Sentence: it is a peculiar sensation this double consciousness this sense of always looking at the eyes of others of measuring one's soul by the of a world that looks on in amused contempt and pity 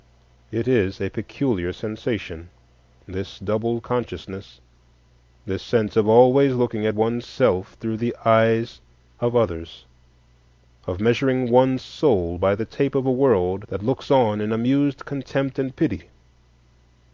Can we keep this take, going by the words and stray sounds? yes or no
no